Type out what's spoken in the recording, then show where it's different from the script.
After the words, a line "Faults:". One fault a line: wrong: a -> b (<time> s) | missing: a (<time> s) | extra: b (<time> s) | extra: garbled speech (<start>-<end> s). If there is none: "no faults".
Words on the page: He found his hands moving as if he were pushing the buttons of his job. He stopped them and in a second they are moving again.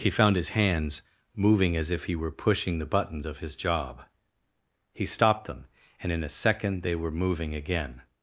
He found his hands moving as if he were pushing the buttons of his job. He stopped them and in a second they were moving again.
Faults:
wrong: are -> were (6.9 s)